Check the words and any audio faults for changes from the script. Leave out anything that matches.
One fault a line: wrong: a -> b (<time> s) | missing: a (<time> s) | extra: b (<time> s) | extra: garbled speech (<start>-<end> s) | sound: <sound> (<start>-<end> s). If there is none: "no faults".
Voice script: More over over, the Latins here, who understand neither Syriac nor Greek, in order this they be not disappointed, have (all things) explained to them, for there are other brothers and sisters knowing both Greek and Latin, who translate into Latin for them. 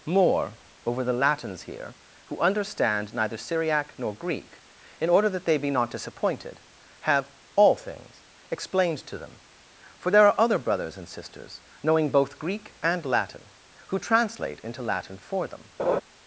missing: over (1.0 s)
wrong: this -> that (5.3 s)
sound: laugh (15.8-16.0 s)